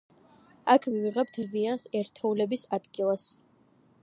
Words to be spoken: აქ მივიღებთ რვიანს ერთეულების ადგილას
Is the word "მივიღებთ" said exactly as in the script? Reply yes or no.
yes